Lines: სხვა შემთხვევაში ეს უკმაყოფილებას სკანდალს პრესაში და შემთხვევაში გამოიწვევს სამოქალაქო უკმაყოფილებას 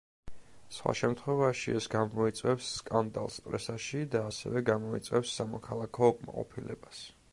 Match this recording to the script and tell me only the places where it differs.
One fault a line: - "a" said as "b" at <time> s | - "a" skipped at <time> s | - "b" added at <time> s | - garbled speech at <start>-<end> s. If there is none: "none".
- "უკმაყოფილებას" said as "გამოიწვევს" at 1.9 s
- "შემთხვევაში" said as "ასევე" at 4.3 s